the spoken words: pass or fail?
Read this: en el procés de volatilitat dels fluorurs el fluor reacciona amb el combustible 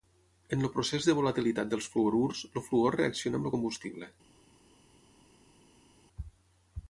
pass